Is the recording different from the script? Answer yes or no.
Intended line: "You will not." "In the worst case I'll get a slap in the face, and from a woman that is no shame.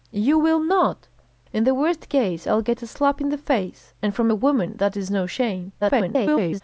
yes